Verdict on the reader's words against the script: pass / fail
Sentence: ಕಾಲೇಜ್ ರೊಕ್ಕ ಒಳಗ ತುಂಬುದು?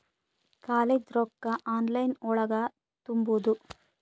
fail